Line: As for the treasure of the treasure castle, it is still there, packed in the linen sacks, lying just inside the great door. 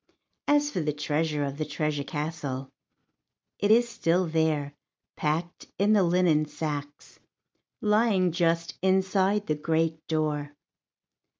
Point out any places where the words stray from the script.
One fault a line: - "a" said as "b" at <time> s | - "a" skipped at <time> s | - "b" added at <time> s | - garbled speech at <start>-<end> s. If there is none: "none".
none